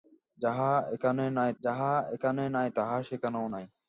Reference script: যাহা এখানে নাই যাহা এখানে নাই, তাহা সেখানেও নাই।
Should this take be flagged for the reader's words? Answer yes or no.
no